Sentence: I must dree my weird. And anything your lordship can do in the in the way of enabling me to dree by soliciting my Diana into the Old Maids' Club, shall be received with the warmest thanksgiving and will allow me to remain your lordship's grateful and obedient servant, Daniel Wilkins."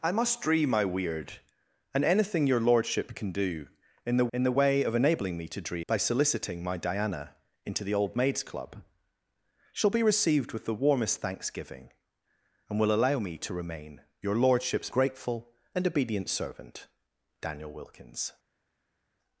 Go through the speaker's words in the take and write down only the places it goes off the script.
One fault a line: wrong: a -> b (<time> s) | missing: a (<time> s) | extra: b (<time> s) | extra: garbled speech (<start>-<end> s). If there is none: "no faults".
no faults